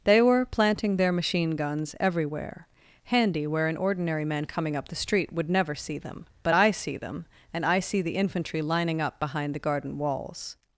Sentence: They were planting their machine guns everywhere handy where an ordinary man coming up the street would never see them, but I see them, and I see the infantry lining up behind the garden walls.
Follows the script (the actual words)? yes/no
yes